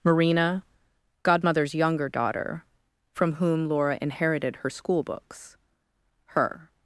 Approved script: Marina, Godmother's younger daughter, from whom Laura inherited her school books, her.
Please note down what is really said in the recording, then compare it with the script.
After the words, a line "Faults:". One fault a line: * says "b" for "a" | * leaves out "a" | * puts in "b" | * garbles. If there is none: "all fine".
Marina, Godmother's younger daughter, from whom Laura inherited her school books, her.
Faults:
all fine